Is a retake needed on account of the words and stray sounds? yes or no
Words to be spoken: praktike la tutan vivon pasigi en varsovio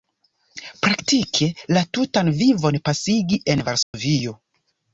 yes